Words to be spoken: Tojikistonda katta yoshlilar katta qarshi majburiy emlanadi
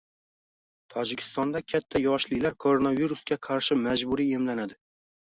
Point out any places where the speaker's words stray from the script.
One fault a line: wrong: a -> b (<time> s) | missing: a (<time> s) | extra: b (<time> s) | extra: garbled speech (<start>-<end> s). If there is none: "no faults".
wrong: katta -> koronavirusga (2.6 s)